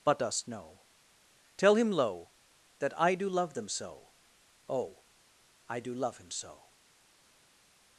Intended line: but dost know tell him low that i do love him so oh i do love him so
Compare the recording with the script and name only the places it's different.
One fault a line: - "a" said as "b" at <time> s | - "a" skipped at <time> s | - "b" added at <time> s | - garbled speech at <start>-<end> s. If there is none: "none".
- "him" said as "them" at 3.5 s